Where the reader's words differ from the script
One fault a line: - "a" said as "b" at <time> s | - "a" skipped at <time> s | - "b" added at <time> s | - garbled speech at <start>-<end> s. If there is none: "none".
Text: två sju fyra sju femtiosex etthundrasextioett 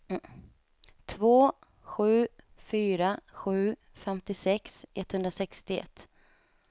none